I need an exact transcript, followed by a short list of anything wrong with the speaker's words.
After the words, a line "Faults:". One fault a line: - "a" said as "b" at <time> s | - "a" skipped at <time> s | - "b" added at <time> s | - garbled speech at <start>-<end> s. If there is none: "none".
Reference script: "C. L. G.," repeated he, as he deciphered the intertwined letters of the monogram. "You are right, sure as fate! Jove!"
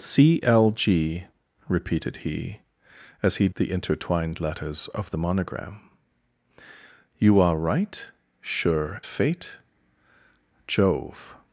"C. L. G.," repeated he, as he the intertwined letters of the monogram. "You are right, sure fate! Jove!"
Faults:
- "deciphered" skipped at 3.5 s
- "as" skipped at 9.0 s